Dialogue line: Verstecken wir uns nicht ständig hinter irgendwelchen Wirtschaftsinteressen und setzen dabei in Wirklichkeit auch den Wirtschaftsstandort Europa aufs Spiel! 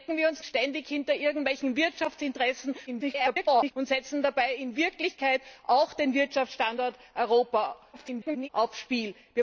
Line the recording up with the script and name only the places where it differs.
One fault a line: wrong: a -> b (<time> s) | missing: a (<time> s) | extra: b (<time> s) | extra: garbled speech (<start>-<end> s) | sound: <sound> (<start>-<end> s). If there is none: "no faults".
missing: nicht (0.4 s)
extra: garbled speech (2.9-3.7 s)
extra: garbled speech (7.9-8.5 s)